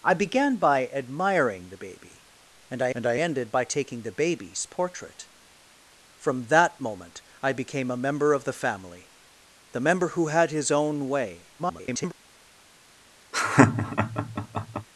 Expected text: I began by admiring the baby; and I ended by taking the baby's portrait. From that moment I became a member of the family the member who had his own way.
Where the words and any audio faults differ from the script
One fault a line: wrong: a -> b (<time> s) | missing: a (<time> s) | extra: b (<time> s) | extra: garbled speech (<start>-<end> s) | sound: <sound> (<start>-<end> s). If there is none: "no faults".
extra: and I (2.9 s)
extra: garbled speech (11.6-12.1 s)
sound: laugh (13.3-14.9 s)